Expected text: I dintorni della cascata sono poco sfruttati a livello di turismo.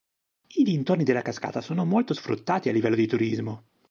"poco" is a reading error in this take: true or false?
true